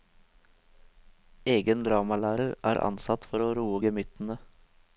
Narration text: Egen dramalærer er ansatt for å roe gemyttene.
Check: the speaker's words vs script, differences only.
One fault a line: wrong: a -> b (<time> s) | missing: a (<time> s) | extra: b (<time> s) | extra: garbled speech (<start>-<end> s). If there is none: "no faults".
no faults